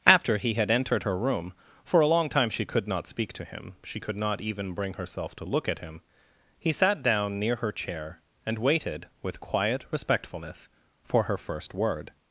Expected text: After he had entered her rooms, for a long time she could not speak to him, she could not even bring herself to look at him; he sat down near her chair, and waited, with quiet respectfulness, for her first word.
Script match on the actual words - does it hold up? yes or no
no